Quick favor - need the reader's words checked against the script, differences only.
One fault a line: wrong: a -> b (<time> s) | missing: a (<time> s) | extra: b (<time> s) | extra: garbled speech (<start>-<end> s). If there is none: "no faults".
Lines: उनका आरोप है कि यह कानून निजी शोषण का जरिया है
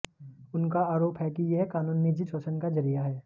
no faults